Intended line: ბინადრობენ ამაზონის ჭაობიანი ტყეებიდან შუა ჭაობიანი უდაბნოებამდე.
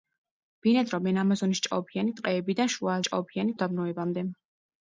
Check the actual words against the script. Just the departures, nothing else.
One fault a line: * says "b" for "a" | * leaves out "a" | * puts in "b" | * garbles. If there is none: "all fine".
all fine